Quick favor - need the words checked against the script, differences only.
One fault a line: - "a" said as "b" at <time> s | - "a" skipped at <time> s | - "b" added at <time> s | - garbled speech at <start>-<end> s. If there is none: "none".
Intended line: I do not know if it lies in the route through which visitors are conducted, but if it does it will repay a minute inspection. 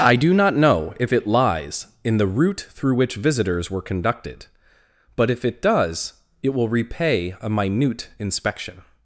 - "are" said as "were" at 3.7 s